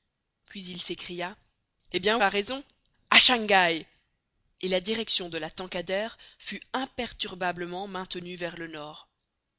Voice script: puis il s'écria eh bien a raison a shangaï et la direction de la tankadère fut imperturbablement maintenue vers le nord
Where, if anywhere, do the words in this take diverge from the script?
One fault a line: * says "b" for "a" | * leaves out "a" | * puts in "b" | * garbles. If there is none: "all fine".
all fine